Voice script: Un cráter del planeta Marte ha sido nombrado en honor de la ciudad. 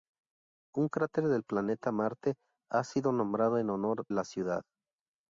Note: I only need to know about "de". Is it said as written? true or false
false